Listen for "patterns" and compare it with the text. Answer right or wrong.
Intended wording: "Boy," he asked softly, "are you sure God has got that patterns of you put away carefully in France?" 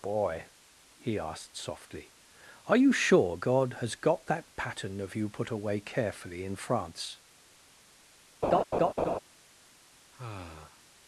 wrong